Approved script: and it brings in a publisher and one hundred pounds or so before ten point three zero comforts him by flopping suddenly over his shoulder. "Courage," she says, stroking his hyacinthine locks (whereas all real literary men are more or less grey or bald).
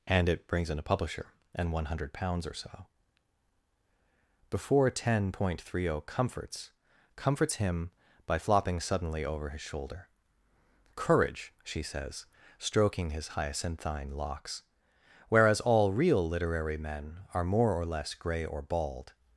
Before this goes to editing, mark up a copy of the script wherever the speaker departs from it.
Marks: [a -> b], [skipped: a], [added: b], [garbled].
and it brings in a publisher and one hundred pounds or so before ten point three zero comforts [added: comforts] him by flopping suddenly over his shoulder. "Courage," she says, stroking his hyacinthine locks (whereas all real literary men are more or less grey or bald).